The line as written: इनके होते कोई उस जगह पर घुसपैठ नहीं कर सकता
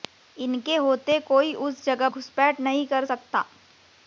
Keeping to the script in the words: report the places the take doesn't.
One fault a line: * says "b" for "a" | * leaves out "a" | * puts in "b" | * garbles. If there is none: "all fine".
* leaves out "पर"